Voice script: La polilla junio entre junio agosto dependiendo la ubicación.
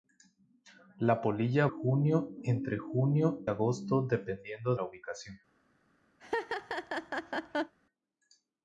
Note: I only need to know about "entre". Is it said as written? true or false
true